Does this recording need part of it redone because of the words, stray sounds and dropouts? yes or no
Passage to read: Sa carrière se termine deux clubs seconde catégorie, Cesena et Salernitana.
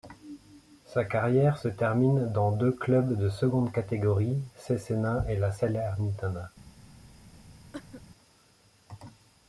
yes